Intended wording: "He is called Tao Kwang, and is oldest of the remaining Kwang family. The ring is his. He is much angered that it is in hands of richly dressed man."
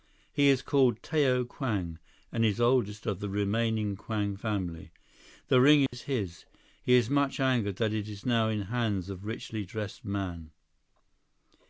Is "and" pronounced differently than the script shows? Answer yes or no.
no